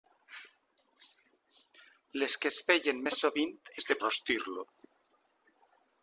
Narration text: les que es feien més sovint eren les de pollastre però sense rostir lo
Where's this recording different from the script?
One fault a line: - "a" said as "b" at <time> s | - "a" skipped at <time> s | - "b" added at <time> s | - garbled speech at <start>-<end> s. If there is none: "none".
- "eren" skipped at 3.5 s
- "pollastre però sense" skipped at 4.0 s